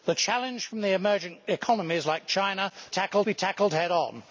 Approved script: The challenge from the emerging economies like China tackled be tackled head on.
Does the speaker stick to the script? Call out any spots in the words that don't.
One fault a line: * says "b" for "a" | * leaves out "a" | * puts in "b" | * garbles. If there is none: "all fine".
all fine